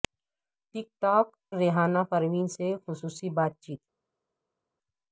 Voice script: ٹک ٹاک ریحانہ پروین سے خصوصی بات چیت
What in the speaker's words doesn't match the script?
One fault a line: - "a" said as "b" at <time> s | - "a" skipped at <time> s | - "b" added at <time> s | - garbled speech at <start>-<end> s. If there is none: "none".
none